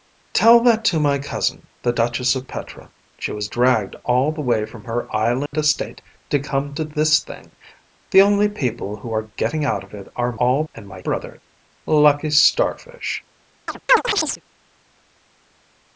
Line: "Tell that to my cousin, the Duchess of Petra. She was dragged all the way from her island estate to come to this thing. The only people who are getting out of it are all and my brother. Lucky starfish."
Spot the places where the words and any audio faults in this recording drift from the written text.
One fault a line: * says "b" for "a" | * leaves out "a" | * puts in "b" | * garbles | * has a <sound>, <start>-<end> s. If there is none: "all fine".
* has a dropout, 5.5-5.5 s
* has a chirp, 13.7-14.4 s